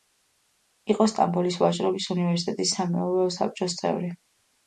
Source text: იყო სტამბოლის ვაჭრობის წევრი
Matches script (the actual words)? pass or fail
fail